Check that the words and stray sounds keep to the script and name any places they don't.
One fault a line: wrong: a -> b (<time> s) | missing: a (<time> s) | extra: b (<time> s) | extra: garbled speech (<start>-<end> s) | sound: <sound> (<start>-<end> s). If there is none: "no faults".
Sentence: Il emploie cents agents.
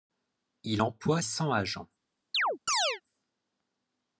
sound: chirp (2.3-3.0 s)